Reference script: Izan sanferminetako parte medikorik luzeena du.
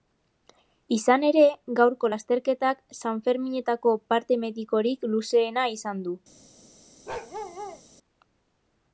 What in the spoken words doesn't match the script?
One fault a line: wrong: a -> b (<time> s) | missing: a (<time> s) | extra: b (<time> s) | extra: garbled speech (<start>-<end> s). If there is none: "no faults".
extra: ere gaurko lasterketak (1.3 s)
extra: izan (5.8 s)